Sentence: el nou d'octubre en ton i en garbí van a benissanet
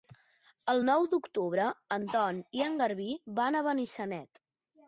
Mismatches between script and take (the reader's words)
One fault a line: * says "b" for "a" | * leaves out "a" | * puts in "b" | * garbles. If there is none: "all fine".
all fine